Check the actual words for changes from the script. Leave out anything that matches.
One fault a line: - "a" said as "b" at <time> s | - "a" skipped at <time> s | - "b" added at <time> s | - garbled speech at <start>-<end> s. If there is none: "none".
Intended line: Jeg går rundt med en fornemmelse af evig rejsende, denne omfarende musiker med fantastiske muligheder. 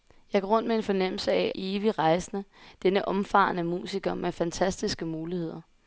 none